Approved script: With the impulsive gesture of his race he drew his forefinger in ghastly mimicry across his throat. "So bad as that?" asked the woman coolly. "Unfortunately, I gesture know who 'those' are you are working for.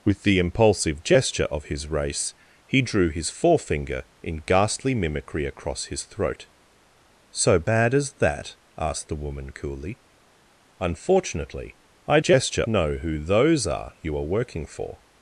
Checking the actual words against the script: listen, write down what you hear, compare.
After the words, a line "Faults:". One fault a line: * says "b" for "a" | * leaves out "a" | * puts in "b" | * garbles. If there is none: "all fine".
With the impulsive gesture of his race he drew his forefinger in ghastly mimicry across his throat. "So bad as that?" asked the woman coolly. "Unfortunately, I gesture know who 'those' are you are working for.
Faults:
all fine